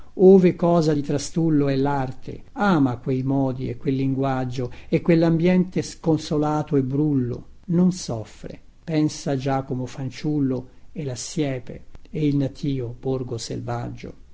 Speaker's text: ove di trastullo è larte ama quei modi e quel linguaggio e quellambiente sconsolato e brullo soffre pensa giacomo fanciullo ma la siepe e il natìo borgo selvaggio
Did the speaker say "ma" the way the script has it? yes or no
no